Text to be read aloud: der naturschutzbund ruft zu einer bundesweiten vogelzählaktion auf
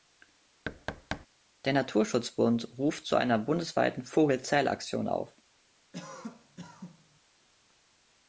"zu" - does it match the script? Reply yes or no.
yes